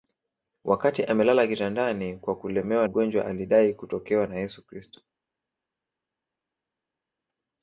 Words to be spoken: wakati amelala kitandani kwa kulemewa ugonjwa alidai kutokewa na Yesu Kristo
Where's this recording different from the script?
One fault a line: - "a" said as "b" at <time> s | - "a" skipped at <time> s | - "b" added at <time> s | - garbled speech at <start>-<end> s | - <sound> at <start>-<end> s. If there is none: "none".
none